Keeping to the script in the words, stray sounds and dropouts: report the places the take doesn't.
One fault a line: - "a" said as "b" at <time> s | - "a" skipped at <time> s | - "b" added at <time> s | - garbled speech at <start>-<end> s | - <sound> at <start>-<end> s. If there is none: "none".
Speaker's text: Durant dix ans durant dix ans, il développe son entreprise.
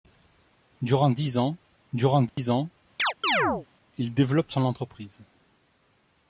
- dropout at 2.3-2.4 s
- chirp at 3.0-3.7 s